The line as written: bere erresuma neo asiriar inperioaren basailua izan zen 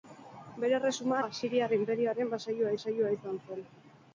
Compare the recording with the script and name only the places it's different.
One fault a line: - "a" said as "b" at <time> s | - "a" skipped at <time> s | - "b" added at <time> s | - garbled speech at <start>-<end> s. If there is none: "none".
- "neo" skipped at 1.2 s
- "basailua" added at 2.7 s